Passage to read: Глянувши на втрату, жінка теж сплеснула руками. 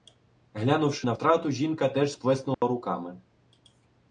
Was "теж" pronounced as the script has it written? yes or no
yes